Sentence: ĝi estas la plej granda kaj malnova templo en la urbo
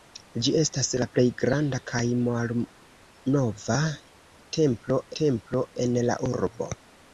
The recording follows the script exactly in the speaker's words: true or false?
false